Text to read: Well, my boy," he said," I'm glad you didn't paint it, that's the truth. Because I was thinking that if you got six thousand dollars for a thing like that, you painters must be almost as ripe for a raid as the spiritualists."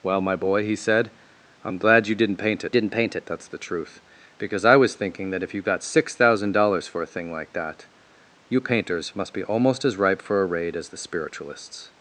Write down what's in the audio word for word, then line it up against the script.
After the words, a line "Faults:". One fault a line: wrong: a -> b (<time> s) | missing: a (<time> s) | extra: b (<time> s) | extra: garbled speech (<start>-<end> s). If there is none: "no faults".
Well, my boy," he said," I'm glad you didn't paint it didn't paint it, that's the truth. Because I was thinking that if you got six thousand dollars for a thing like that, you painters must be almost as ripe for a raid as the spiritualists."
Faults:
extra: didn't paint it (2.7 s)